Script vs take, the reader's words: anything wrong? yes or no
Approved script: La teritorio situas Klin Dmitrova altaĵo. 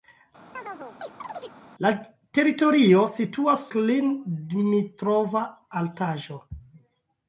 no